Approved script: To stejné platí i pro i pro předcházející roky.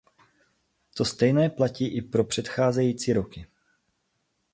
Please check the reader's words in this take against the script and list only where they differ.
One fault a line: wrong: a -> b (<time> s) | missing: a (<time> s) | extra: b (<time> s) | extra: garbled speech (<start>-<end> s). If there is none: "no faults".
missing: i pro (2.2 s)